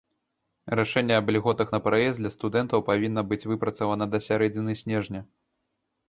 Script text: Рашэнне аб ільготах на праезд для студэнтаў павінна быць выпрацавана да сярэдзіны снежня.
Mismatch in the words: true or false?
false